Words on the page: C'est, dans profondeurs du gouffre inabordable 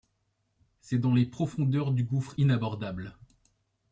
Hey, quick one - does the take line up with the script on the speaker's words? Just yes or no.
no